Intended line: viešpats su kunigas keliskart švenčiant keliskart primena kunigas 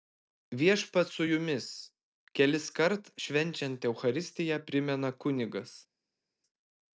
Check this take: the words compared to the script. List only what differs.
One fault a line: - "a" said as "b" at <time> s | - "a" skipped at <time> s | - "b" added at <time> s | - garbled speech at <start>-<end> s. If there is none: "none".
- "kunigas" said as "jumis" at 1.3 s
- "keliskart" said as "eucharistiją" at 3.9 s